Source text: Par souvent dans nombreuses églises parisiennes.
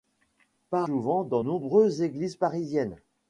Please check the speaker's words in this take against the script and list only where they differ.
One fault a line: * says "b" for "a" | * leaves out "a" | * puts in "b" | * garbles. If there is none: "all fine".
all fine